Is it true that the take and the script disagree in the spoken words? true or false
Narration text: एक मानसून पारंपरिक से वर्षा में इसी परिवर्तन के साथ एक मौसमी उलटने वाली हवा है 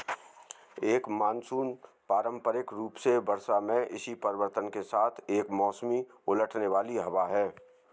true